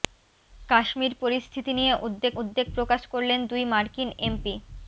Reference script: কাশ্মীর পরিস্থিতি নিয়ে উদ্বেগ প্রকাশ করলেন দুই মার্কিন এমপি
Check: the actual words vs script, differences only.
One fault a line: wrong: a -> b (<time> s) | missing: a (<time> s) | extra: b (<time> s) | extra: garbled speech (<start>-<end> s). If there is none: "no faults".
extra: উদ্বেগ (2.4 s)